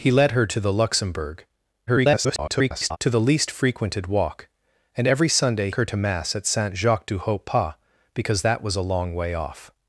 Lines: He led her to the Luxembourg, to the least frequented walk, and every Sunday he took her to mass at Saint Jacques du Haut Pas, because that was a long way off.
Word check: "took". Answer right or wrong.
wrong